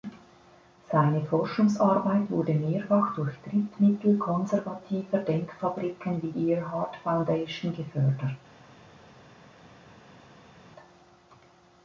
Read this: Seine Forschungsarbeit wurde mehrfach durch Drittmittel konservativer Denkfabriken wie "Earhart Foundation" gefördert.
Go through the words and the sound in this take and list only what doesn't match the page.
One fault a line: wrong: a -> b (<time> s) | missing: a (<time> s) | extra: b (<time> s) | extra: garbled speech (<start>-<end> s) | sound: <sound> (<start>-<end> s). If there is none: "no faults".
no faults